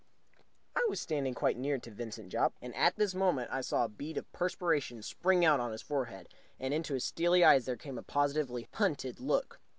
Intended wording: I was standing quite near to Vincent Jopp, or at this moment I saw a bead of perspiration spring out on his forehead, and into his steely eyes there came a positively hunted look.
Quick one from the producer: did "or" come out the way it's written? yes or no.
no